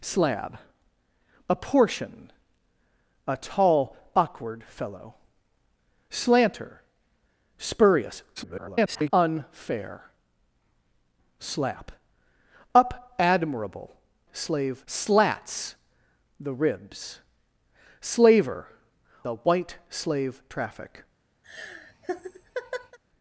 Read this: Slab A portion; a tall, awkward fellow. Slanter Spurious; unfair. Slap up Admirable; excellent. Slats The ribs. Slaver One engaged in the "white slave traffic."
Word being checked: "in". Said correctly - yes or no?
no